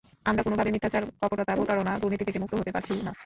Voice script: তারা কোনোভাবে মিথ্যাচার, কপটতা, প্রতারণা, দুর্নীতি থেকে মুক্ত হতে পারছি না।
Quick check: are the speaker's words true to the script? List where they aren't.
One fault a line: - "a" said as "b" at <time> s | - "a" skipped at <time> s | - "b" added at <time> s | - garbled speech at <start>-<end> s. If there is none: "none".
- "তারা" said as "আমরা" at 0.2 s